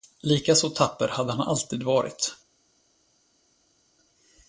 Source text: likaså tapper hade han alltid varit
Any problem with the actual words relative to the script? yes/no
no